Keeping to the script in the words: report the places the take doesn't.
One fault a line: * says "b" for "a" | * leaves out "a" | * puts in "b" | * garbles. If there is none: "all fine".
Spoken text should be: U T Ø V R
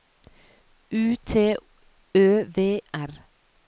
all fine